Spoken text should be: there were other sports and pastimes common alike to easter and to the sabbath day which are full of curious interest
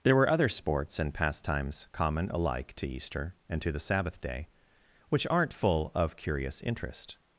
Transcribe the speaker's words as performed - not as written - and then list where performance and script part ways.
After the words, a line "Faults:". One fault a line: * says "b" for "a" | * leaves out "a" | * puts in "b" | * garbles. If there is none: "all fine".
there were other sports and pastimes common alike to easter and to the sabbath day which aren't full of curious interest
Faults:
* says "aren't" for "are"